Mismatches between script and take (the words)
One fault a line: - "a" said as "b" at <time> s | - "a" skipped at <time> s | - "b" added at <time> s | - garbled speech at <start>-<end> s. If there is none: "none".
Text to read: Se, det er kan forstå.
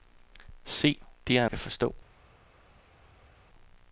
none